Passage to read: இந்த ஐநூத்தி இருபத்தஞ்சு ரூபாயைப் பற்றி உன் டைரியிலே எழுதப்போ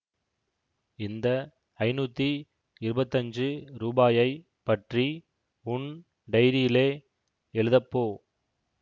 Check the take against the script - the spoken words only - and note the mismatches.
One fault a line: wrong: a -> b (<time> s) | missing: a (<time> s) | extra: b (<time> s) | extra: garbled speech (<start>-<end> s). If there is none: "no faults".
no faults